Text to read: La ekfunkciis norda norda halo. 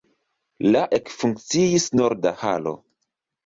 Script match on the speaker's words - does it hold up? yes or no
no